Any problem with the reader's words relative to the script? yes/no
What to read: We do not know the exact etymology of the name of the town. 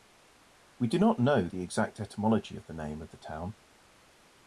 no